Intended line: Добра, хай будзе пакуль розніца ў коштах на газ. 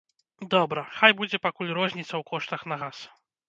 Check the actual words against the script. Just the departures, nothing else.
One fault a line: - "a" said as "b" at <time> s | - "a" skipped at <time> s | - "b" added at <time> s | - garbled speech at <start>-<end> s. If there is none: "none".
none